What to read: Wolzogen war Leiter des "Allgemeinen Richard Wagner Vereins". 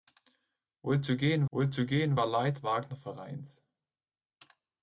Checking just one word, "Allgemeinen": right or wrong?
wrong